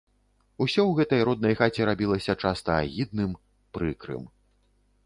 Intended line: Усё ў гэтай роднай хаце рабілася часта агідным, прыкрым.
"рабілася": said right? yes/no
yes